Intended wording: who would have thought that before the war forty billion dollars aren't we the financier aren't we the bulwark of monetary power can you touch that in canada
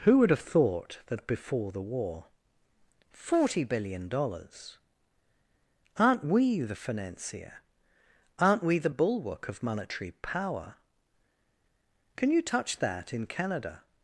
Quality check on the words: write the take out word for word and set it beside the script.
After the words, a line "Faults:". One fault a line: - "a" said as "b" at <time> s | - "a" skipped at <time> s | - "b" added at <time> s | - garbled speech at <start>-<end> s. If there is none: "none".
who would have thought that before the war forty billion dollars aren't we the financier aren't we the bulwark of monetary power can you touch that in canada
Faults:
none